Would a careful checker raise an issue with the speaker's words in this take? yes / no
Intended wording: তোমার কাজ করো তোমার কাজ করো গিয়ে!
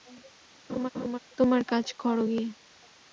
yes